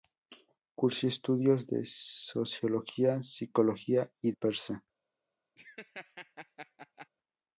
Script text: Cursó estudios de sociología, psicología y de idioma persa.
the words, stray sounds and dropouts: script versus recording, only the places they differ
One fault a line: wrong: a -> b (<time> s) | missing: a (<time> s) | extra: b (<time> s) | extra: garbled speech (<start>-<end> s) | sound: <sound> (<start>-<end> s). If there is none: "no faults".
missing: de idioma (4.3 s)
sound: laugh (5.6-7.1 s)